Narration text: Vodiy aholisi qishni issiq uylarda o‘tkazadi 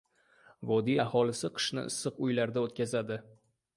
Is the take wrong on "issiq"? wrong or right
right